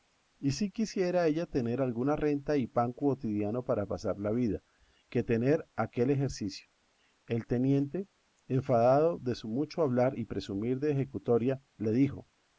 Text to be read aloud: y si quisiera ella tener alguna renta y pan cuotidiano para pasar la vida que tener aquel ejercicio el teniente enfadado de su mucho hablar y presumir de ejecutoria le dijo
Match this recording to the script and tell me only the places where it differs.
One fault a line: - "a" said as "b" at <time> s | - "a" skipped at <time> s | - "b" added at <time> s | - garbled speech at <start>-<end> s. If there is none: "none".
none